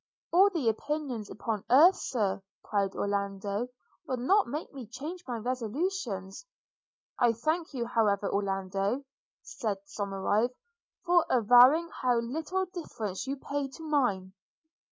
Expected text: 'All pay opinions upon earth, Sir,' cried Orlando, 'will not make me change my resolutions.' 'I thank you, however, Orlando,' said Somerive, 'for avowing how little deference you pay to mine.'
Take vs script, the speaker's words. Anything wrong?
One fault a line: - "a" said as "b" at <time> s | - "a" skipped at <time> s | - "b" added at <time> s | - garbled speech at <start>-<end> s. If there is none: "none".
- "pay" said as "the" at 0.5 s